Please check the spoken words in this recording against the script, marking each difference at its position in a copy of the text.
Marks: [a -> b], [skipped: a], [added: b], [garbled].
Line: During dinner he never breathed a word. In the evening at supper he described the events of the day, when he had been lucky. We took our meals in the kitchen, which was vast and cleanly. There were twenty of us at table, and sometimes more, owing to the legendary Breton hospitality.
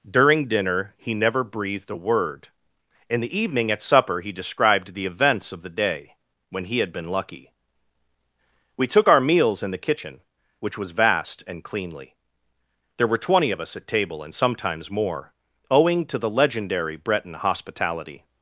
During dinner he never breathed a word. In the evening at supper he described the events of the day, when he had been lucky. We took our meals in the kitchen, which was vast and cleanly. There were twenty of us at table, and sometimes more, owing to the legendary Breton hospitality.